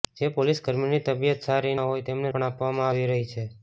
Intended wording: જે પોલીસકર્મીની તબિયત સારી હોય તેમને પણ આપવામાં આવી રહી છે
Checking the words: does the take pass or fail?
pass